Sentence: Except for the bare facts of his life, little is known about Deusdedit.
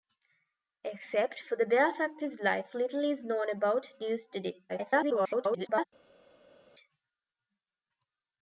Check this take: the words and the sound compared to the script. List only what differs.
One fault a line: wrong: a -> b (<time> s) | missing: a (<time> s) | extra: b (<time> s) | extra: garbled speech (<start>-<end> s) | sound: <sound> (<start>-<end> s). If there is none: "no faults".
missing: of (2.2 s)
extra: garbled speech (4.7-5.8 s)